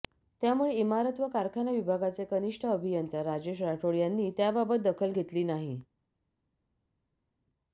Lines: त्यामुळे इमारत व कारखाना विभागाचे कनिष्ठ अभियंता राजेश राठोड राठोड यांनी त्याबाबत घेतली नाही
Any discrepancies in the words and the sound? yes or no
yes